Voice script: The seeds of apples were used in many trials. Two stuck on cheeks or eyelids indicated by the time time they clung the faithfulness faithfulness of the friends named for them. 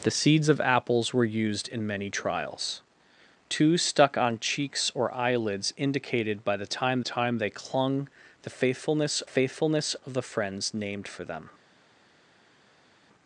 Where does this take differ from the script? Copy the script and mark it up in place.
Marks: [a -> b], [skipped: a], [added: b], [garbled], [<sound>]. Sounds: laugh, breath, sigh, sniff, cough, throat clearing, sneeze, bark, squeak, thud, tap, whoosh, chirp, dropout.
The seeds of apples were used in many trials. Two stuck on cheeks or eyelids indicated by the time time they clung the faithfulness faithfulness of the friends named for them.